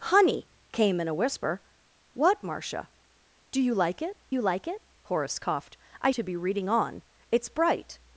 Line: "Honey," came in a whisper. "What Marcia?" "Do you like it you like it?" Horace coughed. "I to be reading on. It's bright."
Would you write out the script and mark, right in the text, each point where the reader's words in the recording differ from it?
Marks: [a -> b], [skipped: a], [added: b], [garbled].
"Honey," came in a whisper. "What Marcia?" "Do you like it you like it?" Horace coughed. "I to be reading on. It's bright."